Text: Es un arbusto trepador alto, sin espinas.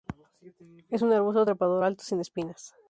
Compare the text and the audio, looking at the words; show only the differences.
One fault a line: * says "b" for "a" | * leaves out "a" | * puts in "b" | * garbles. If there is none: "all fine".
all fine